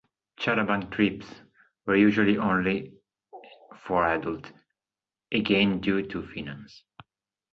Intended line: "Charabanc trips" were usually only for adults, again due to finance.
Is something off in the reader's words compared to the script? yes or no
no